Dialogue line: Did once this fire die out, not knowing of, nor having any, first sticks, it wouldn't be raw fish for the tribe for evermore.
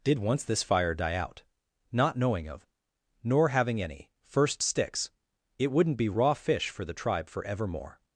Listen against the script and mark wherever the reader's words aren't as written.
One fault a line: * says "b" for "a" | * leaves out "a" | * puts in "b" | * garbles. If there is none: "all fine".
all fine